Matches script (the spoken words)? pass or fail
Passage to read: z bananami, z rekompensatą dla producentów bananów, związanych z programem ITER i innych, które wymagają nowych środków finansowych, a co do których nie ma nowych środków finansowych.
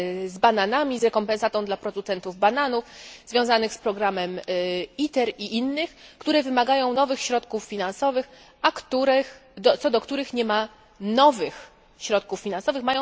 pass